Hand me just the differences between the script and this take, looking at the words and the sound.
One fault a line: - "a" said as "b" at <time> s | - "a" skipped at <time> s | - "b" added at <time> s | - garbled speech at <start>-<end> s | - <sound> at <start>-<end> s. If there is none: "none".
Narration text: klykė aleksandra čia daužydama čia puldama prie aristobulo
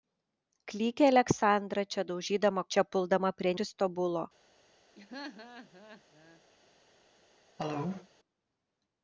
- laugh at 4.9-6.4 s
- cough at 7.6-8.1 s